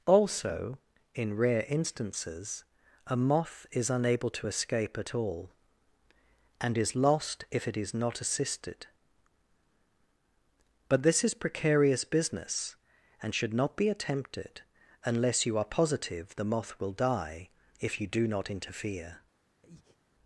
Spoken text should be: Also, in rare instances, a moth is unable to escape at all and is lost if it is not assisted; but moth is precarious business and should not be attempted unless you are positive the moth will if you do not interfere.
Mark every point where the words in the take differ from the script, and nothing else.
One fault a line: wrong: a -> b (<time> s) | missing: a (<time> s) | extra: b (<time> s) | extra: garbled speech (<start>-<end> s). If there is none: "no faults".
wrong: moth -> this (11.0 s)
extra: die (16.9 s)